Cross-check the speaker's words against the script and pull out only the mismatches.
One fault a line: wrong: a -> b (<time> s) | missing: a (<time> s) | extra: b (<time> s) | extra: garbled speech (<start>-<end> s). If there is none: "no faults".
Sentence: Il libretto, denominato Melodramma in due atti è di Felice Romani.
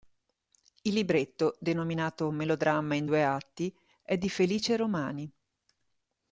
no faults